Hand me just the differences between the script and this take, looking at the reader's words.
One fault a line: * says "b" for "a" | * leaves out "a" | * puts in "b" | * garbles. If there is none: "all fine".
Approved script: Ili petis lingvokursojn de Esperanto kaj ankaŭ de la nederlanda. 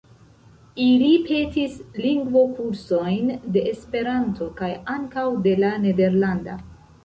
all fine